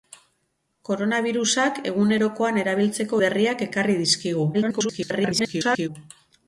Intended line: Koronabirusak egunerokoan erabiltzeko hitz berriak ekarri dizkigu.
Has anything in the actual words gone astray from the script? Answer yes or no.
yes